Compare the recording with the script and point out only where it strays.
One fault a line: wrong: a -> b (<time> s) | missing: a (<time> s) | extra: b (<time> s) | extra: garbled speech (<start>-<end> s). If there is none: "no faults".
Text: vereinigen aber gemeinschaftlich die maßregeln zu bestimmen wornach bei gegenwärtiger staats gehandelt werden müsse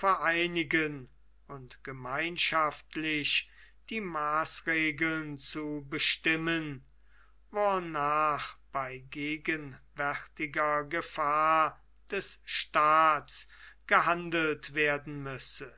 wrong: aber -> und (1.5 s)
extra: gefahr des (10.8 s)